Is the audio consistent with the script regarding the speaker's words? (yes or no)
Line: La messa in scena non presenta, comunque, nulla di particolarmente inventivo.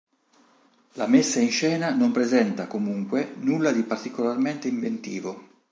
yes